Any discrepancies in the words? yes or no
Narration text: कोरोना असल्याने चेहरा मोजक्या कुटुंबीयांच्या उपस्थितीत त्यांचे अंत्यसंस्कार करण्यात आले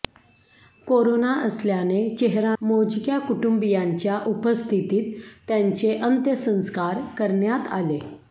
no